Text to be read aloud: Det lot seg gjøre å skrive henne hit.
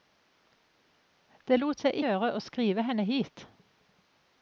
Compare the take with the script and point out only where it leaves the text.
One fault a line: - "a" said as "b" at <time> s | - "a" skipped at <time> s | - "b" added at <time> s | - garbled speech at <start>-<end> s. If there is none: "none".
none